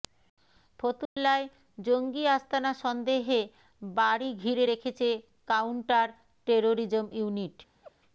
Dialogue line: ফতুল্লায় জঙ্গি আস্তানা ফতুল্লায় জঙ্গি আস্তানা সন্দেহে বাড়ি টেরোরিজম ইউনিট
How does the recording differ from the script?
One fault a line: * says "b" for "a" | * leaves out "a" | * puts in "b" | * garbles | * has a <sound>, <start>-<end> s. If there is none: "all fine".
* has a dropout, 1.1-1.2 s
* says "সন্দেহে বাড়ি ঘিরে রেখেছে কাউন্টার" for "ফতুল্লায় জঙ্গি আস্তানা সন্দেহে বাড়ি"
* has a laugh, 7.8-7.9 s